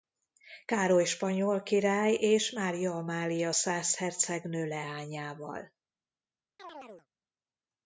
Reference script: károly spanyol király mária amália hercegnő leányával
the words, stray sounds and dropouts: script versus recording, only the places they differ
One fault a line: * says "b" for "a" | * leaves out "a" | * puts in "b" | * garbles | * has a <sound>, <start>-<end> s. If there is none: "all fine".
* puts in "és"
* puts in "szász"
* has a chirp, 6.6-7.1 s